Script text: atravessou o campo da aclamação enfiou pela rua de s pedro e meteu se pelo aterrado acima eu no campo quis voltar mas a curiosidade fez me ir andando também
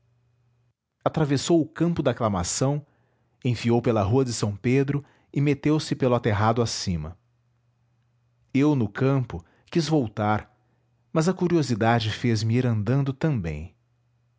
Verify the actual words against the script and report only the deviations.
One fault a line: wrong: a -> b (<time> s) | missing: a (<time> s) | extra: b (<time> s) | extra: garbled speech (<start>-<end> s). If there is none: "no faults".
no faults